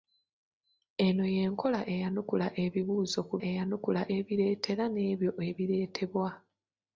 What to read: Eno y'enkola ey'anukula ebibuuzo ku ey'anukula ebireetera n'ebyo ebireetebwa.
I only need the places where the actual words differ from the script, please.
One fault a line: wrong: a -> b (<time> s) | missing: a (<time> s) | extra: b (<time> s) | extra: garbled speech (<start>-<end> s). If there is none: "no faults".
no faults